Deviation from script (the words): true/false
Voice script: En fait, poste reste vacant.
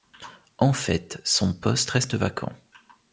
true